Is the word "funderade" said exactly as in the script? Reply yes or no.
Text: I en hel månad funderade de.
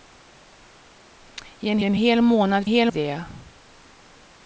no